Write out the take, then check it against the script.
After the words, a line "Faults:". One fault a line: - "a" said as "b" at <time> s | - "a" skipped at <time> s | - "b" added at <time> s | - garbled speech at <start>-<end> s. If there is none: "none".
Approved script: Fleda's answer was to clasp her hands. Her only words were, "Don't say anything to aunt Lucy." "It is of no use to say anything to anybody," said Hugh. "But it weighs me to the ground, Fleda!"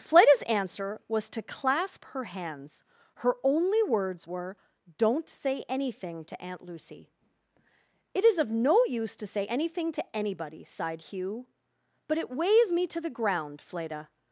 Fleda's answer was to clasp her hands. Her only words were, "Don't say anything to aunt Lucy." "It is of no use to say anything to anybody," sighed Hugh. "But it weighs me to the ground, Fleda!"
Faults:
- "said" said as "sighed" at 10.6 s